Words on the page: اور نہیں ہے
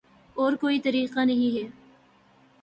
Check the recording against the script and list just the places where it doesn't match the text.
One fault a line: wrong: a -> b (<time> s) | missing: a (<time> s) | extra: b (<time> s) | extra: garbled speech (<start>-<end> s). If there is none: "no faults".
extra: کوئی طریقہ (0.5 s)